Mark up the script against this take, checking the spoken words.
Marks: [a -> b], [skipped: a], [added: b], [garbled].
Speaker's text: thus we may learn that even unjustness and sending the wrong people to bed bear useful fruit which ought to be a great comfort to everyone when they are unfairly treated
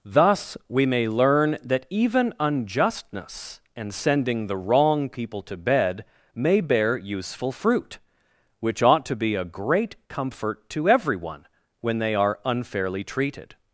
thus we may learn that even unjustness and sending the wrong people to bed [added: may] bear useful fruit which ought to be a great comfort to everyone when they are unfairly treated